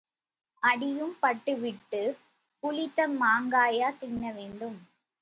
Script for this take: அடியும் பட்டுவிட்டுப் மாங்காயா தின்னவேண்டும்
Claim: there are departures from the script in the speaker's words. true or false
true